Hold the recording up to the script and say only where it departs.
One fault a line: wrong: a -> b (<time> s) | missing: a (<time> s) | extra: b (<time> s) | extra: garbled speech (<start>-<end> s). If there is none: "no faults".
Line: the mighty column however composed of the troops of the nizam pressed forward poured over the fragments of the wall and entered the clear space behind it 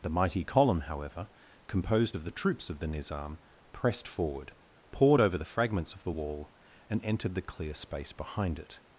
no faults